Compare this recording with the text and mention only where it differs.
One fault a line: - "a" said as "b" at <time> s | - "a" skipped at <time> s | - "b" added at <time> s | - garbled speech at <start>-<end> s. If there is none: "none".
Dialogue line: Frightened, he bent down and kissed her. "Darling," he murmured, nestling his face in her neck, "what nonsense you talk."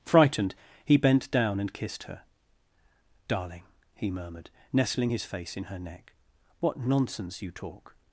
none